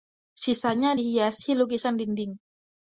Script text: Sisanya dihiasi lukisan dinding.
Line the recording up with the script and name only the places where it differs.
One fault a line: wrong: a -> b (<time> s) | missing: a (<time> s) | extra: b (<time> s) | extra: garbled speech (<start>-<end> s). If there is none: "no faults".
no faults